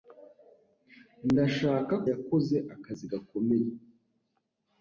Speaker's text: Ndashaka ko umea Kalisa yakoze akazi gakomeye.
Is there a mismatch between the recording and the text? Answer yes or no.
yes